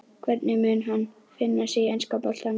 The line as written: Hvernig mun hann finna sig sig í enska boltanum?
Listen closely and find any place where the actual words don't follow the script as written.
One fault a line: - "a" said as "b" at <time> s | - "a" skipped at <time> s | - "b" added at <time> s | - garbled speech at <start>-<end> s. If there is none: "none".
- "sig" skipped at 1.8 s